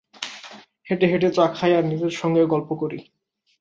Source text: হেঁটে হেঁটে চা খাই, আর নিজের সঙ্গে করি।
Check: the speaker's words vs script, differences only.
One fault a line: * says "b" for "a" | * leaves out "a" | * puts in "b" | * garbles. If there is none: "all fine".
* puts in "গল্প"